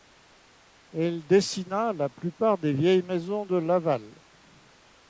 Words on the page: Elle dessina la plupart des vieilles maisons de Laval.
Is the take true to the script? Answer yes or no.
yes